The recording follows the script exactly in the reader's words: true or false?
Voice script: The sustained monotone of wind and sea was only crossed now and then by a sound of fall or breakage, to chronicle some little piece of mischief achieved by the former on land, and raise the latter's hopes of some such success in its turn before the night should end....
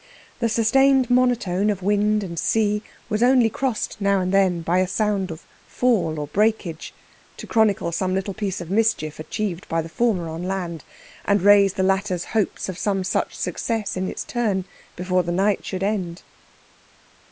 true